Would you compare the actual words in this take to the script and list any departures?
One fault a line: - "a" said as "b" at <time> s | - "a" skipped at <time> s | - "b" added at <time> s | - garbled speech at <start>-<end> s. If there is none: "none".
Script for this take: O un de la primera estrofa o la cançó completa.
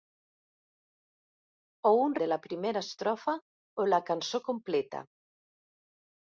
none